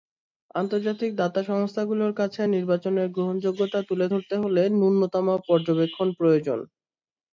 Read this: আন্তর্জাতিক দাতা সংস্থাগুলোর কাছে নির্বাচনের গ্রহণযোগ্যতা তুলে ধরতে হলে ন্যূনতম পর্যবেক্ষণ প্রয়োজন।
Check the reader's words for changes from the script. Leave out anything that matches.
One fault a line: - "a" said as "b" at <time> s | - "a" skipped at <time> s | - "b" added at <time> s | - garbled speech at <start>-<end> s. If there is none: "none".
none